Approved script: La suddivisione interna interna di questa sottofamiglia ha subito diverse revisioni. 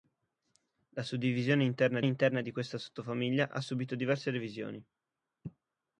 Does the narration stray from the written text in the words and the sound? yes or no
no